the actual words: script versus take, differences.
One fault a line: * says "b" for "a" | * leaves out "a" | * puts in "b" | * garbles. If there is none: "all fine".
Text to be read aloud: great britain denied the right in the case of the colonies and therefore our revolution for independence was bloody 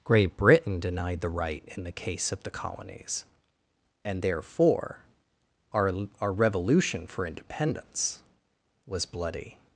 * puts in "our"